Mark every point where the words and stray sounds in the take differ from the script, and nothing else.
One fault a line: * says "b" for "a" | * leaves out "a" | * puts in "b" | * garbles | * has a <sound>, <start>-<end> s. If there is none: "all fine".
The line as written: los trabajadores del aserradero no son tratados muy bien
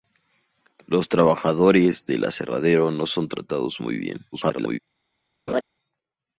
* garbles
* has a laugh, 5.5-5.6 s